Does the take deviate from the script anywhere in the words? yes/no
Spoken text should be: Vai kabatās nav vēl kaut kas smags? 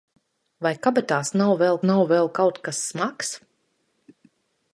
yes